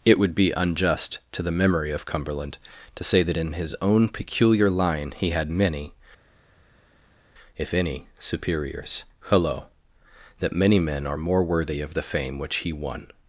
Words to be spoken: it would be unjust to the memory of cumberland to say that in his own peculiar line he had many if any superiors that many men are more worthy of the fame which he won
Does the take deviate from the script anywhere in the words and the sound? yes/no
yes